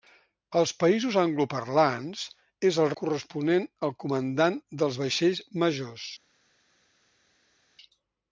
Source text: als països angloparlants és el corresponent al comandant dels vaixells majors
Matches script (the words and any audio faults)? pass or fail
pass